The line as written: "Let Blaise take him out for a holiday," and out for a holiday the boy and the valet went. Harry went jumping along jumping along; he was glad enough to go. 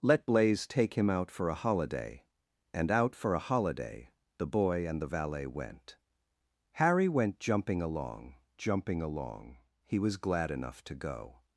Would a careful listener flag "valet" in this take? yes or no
no